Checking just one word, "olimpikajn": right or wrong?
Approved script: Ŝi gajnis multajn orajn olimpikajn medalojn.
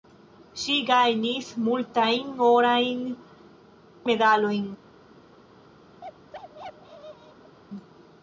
wrong